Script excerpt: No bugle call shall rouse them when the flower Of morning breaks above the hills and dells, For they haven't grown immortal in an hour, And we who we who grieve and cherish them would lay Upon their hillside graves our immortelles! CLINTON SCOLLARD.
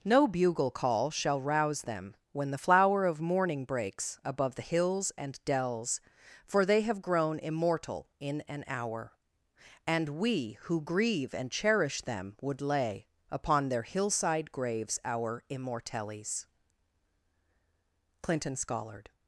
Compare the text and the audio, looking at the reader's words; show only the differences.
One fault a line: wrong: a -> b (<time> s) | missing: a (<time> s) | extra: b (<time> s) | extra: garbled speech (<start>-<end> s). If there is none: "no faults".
wrong: haven't -> have (6.8 s)
missing: we who (10.8 s)